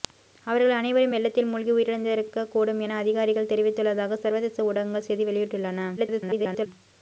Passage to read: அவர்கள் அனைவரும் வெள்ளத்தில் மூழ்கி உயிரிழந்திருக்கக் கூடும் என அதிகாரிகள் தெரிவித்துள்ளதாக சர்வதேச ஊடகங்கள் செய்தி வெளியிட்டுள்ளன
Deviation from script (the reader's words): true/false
true